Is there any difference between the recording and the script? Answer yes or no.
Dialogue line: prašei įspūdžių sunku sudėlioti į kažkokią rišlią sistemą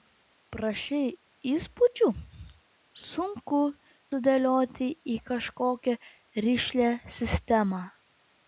no